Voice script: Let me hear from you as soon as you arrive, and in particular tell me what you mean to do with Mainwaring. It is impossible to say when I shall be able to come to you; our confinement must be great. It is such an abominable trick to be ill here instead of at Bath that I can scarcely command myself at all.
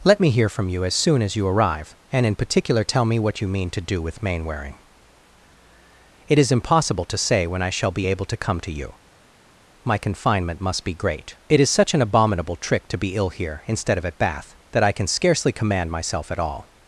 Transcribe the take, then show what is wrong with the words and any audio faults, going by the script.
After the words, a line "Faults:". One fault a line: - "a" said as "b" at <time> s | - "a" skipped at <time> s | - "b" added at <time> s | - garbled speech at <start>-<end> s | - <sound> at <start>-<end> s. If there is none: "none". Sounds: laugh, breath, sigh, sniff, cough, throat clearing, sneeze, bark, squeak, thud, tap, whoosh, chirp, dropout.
Let me hear from you as soon as you arrive, and in particular tell me what you mean to do with Mainwaring. It is impossible to say when I shall be able to come to you; my confinement must be great. It is such an abominable trick to be ill here instead of at Bath that I can scarcely command myself at all.
Faults:
- "our" said as "my" at 9.8 s